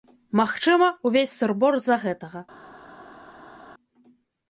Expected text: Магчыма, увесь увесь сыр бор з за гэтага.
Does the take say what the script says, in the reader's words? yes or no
no